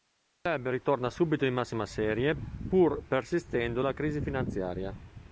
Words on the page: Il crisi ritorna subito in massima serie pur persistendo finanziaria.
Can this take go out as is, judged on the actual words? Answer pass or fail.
fail